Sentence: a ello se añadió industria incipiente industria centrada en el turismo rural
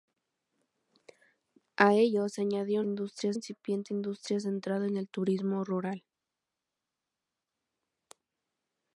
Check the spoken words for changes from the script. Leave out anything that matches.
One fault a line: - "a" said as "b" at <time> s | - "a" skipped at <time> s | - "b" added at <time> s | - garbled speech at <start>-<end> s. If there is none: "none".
none